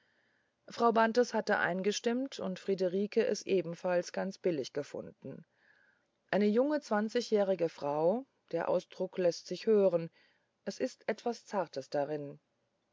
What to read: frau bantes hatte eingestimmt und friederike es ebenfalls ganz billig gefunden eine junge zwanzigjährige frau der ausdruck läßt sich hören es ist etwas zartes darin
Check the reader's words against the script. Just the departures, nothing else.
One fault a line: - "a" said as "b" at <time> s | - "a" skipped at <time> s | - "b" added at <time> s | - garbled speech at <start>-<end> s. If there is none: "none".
none